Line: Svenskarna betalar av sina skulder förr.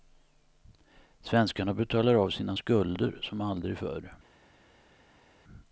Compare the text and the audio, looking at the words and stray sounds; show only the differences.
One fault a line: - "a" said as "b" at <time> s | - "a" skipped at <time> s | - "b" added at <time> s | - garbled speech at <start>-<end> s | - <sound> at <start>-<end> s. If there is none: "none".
- "som aldrig" added at 3.2 s